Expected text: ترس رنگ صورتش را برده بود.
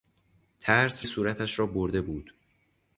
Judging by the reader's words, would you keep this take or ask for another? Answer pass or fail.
fail